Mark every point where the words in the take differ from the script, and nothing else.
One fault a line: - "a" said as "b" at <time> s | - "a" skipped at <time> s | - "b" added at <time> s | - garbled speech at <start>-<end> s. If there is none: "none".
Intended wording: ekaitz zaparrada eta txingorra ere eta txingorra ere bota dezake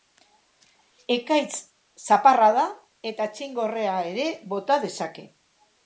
- "eta txingorra ere" skipped at 4.3 s